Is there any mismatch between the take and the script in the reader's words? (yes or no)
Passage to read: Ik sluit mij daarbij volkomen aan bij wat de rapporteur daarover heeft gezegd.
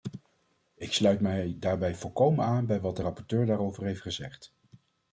no